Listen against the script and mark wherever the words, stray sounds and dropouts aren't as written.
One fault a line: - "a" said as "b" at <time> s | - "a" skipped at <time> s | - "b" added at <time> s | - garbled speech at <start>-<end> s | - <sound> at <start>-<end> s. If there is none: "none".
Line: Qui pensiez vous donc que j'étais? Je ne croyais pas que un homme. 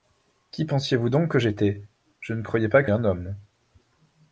none